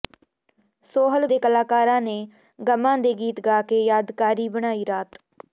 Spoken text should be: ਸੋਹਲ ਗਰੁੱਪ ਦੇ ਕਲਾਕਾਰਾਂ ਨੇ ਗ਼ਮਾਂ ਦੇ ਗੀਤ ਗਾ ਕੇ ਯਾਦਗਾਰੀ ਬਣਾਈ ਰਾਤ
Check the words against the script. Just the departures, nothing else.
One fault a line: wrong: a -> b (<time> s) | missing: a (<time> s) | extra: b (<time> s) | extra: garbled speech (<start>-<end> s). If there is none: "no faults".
missing: ਗਰੁੱਪ (1.3 s)